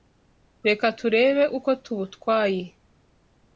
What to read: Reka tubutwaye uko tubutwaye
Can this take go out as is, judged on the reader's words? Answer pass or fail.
fail